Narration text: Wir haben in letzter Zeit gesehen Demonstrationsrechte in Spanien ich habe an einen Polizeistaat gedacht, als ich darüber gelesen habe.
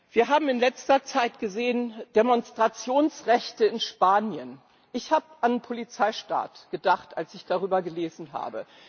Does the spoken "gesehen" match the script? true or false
true